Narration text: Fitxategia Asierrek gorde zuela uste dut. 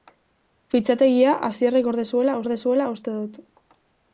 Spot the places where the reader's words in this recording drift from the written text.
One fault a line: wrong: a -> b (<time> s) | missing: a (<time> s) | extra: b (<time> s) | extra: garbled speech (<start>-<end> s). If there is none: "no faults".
extra: gorde zuela (2.4 s)